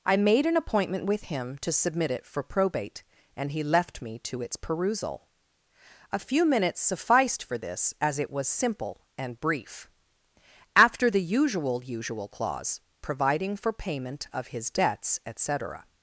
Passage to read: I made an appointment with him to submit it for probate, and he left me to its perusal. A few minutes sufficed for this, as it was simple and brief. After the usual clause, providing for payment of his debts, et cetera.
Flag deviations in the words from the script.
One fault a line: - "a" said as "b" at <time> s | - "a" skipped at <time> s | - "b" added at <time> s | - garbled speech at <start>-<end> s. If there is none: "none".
- "usual" added at 11.8 s